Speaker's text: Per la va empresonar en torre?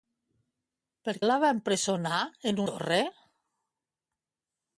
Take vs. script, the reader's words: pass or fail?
pass